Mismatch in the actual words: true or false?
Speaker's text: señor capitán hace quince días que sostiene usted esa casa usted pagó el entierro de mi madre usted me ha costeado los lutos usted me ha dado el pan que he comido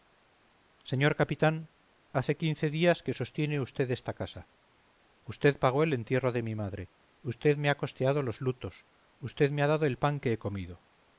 true